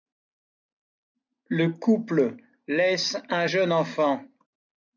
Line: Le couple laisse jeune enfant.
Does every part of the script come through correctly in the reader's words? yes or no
no